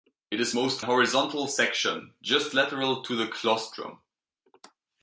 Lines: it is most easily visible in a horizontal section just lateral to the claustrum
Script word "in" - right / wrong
wrong